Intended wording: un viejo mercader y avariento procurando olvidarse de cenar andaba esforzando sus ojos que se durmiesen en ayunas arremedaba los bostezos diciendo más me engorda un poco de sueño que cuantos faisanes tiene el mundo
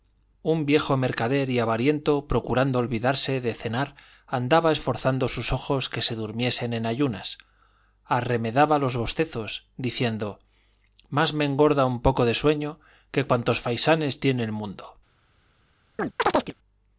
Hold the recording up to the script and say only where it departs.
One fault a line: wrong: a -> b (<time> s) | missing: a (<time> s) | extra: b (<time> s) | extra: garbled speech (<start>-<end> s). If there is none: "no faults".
no faults